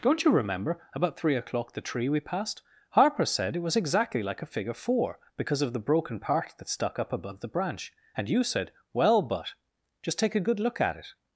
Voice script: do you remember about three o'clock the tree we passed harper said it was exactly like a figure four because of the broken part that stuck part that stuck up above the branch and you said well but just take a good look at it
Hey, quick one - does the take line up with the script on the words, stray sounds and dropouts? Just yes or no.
no